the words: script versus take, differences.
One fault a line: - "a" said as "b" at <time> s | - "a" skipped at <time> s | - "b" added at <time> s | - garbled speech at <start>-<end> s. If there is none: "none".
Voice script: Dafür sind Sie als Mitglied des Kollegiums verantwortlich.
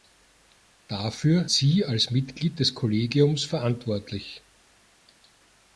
- "sind" skipped at 1.5 s